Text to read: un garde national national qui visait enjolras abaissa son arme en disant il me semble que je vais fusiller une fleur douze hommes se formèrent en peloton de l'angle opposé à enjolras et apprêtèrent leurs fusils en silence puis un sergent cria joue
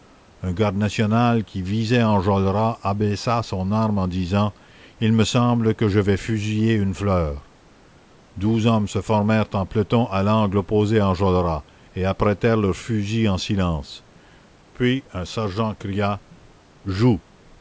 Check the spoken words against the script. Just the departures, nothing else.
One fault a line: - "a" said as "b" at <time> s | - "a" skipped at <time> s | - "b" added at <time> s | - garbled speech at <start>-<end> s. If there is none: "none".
- "national" skipped at 1.4 s
- "de" said as "à" at 10.1 s